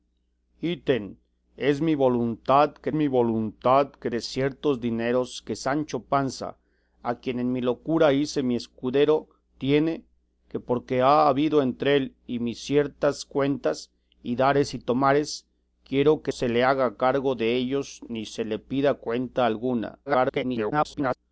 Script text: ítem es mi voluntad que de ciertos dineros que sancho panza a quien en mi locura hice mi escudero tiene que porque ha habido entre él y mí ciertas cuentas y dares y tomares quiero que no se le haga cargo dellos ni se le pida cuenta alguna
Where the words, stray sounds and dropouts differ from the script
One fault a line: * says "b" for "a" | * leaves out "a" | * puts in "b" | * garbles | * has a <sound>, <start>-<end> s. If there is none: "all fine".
* puts in "mi voluntad que"
* leaves out "no"
* garbles